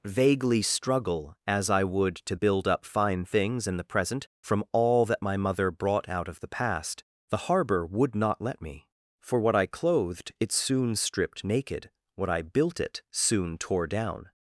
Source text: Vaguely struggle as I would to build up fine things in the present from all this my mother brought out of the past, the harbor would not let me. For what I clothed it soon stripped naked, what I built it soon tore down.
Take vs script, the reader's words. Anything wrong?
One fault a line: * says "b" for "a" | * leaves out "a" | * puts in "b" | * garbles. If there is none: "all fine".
* says "that" for "this"